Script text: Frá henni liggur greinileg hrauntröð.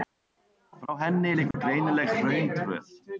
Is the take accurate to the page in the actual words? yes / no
yes